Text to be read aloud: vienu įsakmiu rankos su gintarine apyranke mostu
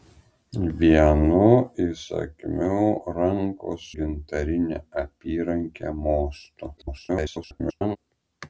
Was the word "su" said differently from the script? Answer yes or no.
yes